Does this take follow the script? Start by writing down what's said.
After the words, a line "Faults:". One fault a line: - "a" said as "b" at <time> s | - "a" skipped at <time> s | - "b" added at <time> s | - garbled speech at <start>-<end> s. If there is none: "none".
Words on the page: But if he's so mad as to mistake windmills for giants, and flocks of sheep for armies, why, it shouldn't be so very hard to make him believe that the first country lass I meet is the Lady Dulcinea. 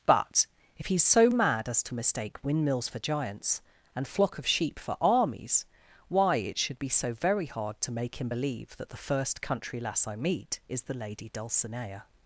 But if he's so mad as to mistake windmills for giants, and flock of sheep for armies, why, it should be so very hard to make him believe that the first country lass I meet is the Lady Dulcinea.
Faults:
- "flocks" said as "flock" at 4.0 s
- "shouldn't" said as "should" at 6.6 s